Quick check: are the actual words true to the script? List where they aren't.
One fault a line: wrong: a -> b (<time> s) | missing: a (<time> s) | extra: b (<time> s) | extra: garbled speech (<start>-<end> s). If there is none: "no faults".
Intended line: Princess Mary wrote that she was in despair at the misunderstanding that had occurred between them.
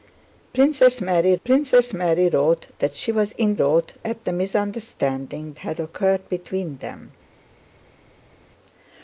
extra: princess Mary (1.4 s)
wrong: despair -> wrote (3.5 s)
missing: that (5.5 s)